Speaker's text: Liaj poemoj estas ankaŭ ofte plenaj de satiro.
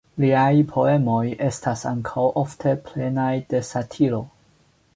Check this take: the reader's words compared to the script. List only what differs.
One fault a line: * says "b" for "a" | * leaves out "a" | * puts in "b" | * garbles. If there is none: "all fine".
all fine